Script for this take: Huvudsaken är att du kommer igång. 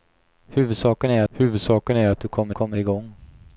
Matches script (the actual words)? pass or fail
fail